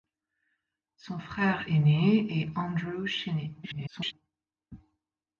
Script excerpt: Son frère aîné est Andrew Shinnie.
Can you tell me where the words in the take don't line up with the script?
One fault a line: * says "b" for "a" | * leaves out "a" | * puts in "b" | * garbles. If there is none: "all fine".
* garbles